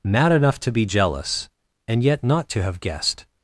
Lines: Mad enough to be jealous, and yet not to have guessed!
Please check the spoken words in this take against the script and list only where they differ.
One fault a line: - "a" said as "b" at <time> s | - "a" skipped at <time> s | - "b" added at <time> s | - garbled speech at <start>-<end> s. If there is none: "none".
none